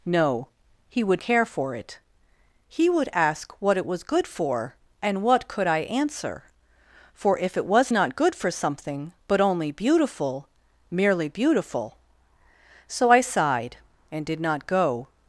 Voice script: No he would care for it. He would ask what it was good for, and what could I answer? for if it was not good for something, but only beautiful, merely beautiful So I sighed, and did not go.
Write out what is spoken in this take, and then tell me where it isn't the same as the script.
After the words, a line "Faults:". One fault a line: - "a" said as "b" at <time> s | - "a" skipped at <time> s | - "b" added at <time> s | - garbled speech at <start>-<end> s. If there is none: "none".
No he would care for it. He would ask what it was good for, and what could I answer? for if it was not good for something, but only beautiful, merely beautiful So I sighed, and did not go.
Faults:
none